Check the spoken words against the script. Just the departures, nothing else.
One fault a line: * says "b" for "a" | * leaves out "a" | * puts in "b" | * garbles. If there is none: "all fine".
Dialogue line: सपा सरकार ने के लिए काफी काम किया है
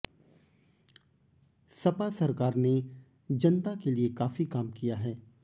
* puts in "जनता"